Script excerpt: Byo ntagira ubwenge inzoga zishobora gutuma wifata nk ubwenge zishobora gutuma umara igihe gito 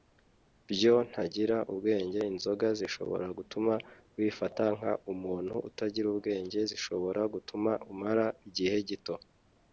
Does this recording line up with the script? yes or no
no